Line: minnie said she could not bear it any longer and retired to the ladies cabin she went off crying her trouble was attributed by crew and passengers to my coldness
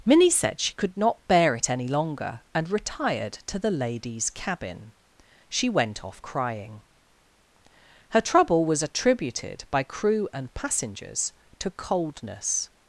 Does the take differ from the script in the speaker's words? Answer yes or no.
yes